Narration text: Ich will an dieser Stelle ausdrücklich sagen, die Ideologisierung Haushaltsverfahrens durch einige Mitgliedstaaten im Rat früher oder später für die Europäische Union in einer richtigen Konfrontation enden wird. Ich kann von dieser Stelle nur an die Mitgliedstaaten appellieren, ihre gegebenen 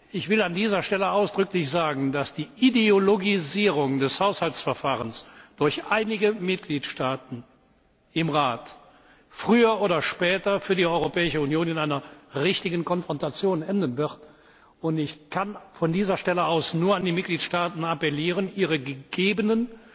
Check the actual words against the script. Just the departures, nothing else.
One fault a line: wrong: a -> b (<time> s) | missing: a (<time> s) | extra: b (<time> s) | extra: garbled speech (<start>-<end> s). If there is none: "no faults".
extra: dass (2.1 s)
extra: des (4.0 s)
extra: aus (16.5 s)